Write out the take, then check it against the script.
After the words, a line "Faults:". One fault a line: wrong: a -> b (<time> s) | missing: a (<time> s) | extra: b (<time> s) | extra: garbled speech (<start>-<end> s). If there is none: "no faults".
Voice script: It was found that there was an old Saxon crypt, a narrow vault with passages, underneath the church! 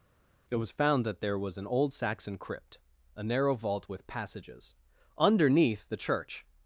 It was found that there was an old Saxon crypt, a narrow vault with passages, underneath the church!
Faults:
no faults